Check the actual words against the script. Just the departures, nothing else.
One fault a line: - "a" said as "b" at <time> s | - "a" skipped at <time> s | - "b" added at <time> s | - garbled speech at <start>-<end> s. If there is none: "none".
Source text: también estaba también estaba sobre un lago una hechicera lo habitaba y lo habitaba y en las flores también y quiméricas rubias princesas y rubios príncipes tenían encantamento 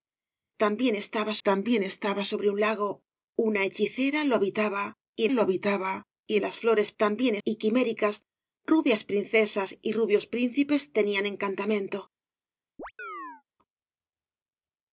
none